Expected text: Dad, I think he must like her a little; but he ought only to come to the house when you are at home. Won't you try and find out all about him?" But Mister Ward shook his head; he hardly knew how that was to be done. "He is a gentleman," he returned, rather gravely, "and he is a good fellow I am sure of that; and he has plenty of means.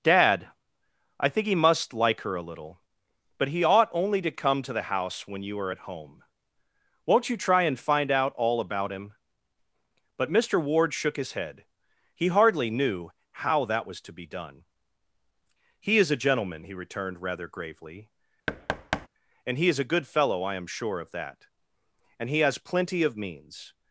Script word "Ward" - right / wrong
right